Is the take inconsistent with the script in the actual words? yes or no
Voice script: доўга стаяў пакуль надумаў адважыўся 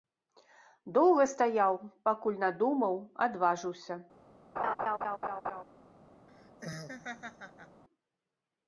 no